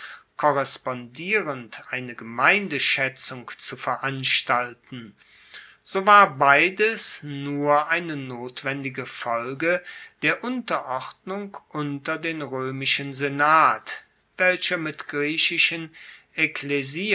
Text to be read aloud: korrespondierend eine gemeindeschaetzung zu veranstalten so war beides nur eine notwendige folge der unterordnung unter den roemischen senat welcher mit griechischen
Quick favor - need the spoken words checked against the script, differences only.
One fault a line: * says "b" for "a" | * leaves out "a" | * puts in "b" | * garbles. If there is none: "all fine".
all fine